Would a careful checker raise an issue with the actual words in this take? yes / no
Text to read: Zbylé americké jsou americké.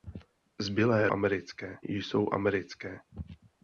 no